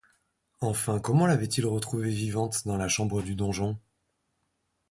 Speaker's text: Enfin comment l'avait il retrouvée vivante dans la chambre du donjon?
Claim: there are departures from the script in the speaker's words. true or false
false